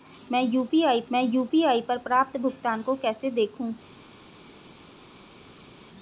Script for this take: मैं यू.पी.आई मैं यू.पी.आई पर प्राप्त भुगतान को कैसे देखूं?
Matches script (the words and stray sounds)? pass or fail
pass